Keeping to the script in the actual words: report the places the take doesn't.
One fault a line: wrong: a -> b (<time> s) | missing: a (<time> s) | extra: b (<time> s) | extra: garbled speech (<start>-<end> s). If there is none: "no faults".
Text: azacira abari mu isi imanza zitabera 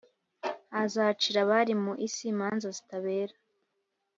no faults